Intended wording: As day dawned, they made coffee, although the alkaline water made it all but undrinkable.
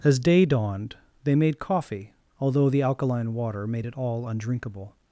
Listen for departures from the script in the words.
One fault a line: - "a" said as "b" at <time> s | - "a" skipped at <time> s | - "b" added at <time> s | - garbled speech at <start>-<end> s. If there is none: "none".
- "but" skipped at 4.3 s